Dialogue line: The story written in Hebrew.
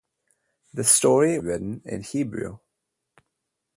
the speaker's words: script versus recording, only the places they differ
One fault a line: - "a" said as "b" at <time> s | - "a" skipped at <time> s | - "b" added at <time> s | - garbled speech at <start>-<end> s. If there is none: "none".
none